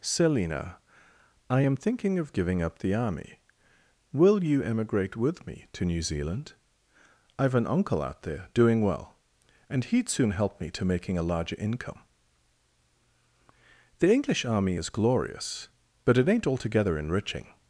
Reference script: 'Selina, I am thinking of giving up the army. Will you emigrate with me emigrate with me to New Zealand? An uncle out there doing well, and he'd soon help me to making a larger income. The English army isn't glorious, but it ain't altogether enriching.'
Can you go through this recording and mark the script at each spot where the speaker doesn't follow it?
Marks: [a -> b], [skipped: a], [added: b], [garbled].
'Selina, I am thinking of giving up the army. Will you emigrate with me [skipped: emigrate with me] to New Zealand? [added: I've] An uncle out there doing well, and he'd soon help me to making a larger income. The English army [isn't -> is] glorious, but it ain't altogether enriching.'